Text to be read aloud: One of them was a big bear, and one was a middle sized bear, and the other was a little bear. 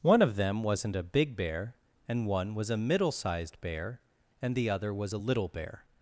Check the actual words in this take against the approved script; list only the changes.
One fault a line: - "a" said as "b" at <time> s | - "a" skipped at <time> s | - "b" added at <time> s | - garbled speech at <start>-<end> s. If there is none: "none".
- "was" said as "wasn't" at 0.6 s